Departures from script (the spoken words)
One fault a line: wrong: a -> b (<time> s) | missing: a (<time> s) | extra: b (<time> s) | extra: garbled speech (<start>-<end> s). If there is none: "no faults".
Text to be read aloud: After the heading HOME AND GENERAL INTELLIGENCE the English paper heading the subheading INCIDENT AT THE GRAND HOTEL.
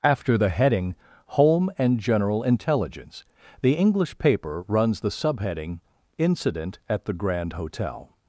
wrong: heading -> runs (4.7 s)